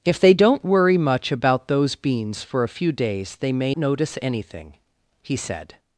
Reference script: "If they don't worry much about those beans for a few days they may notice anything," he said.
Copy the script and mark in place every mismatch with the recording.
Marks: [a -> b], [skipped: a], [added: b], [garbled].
"If they don't worry much about those beans for a few days they may notice anything," he said.